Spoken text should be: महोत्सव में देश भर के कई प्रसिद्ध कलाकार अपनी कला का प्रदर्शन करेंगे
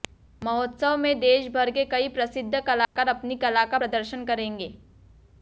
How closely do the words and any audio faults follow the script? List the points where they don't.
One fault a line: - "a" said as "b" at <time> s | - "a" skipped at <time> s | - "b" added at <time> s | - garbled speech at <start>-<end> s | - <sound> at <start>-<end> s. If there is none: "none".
- dropout at 2.8-3.0 s